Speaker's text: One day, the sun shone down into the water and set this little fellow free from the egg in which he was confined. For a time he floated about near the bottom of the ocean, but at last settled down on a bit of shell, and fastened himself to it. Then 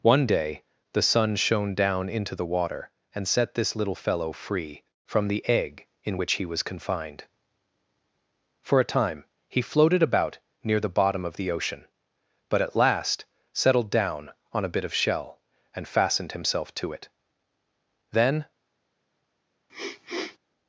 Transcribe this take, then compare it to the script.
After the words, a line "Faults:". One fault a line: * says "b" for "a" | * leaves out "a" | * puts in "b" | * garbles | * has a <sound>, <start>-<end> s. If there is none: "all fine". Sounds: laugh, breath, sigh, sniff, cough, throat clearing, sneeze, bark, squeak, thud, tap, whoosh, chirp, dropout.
One day, the sun shone down into the water and set this little fellow free from the egg in which he was confined. For a time he floated about near the bottom of the ocean, but at last settled down on a bit of shell, and fastened himself to it. Then
Faults:
* has a sniff, 19.7-20.4 s